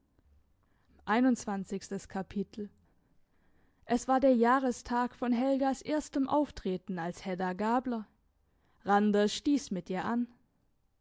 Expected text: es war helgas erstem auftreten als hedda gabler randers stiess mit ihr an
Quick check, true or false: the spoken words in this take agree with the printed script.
false